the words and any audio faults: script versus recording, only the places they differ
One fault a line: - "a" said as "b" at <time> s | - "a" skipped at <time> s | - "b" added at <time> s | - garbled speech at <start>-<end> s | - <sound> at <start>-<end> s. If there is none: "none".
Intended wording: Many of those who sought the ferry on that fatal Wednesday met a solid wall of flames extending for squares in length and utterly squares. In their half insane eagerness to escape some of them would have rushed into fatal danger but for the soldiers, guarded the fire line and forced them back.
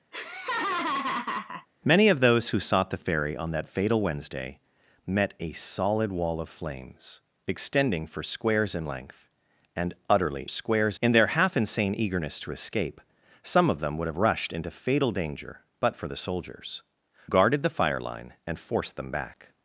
- laugh at 0.1-1.7 s